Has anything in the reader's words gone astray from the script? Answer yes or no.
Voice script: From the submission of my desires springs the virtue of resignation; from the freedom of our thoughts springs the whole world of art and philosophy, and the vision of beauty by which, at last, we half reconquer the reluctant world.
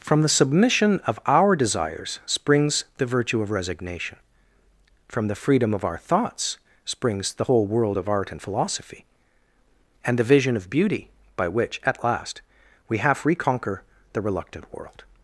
yes